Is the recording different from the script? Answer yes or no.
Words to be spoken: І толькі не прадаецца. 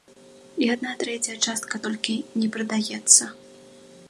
yes